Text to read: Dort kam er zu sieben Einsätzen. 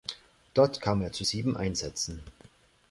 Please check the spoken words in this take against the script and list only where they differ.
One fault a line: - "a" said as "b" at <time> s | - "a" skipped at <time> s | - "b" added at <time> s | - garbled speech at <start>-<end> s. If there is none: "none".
none